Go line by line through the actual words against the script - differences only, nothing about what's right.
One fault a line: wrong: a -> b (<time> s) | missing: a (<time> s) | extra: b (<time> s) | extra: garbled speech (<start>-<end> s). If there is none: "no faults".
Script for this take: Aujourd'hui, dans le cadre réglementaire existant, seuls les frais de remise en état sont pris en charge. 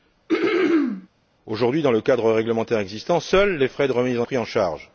missing: état sont (4.3 s)